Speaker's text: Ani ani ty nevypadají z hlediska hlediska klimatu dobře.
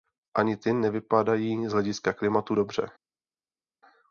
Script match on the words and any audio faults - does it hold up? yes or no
no